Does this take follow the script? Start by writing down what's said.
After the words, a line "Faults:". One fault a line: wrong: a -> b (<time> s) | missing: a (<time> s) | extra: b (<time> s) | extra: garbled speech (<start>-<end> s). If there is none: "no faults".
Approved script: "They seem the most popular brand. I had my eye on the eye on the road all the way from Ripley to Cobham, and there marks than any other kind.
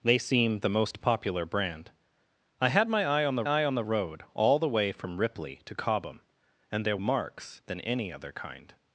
"They seem the most popular brand. I had my eye on the eye on the road all the way from Ripley to Cobham, and there marks than any other kind.
Faults:
no faults